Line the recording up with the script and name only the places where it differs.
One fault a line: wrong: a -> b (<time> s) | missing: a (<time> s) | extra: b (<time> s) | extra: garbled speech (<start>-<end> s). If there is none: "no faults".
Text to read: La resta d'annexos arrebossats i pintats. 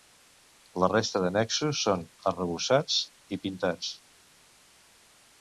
extra: són (1.9 s)